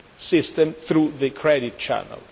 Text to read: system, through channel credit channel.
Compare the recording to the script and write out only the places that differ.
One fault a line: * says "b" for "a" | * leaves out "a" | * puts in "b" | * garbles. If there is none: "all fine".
* says "the" for "channel"